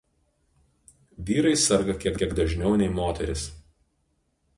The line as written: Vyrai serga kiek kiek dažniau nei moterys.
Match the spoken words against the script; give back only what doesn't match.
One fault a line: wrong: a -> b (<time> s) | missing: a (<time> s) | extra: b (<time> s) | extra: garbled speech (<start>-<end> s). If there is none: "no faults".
no faults